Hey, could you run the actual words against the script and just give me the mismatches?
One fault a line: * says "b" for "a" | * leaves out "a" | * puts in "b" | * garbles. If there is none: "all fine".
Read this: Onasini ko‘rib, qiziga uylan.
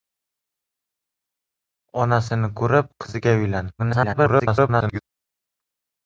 * garbles